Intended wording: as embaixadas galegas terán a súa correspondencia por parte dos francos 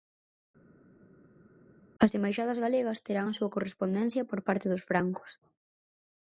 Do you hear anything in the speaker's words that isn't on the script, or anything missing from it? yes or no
no